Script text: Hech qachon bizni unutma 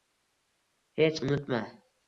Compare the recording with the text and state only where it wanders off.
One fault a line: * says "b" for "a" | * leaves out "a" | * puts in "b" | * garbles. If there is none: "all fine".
* leaves out "qachon bizni"